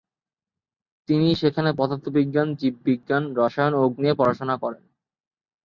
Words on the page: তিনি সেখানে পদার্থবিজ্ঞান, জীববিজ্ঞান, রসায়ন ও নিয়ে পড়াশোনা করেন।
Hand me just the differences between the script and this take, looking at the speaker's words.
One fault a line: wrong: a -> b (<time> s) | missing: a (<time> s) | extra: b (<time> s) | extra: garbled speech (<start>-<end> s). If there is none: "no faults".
no faults